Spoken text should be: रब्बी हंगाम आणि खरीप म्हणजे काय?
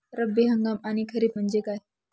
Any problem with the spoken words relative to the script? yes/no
no